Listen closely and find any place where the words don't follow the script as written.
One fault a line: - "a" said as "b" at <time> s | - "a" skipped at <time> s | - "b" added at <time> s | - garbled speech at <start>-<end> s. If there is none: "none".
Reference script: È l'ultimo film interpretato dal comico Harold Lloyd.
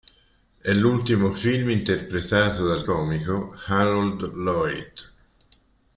none